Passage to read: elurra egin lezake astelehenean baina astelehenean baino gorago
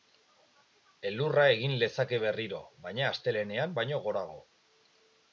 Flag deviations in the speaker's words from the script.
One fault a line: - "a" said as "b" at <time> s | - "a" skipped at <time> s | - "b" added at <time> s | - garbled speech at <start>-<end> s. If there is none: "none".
- "astelehenean" said as "berriro" at 2.2 s